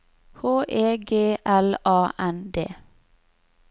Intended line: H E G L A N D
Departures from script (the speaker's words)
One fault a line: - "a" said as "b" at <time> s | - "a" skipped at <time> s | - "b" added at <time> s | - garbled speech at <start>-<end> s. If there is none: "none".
none